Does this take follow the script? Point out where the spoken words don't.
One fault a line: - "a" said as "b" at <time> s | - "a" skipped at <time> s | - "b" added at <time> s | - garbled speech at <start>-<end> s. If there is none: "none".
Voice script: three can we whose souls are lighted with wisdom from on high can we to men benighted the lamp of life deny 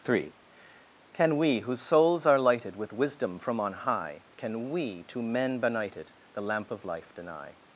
none